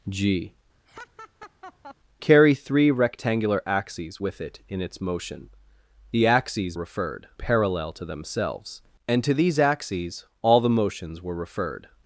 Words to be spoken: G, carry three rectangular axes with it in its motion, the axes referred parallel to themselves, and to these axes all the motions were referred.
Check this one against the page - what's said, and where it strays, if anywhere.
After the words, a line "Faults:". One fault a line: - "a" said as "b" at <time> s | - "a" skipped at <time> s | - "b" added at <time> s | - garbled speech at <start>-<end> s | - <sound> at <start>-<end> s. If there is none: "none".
G, carry three rectangular axes with it in its motion, the axes referred parallel to themselves, and to these axes all the motions were referred.
Faults:
- laugh at 0.9-2.0 s